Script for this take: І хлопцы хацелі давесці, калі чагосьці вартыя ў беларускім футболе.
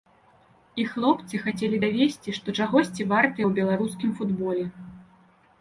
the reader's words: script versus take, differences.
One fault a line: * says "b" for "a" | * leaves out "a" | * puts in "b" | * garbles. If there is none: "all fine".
* says "што" for "калі"